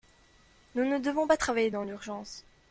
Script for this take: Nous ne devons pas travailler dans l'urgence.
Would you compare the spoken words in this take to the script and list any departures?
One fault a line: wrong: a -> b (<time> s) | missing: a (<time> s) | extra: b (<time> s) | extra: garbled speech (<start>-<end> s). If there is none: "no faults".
no faults